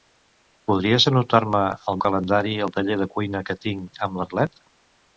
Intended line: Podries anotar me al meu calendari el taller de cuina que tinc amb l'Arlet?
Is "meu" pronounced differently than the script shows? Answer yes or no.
yes